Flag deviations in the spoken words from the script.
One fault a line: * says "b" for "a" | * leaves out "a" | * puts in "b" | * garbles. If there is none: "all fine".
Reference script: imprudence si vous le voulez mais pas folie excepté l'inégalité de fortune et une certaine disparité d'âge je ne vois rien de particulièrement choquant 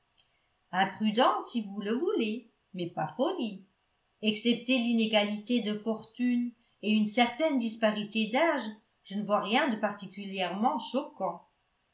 all fine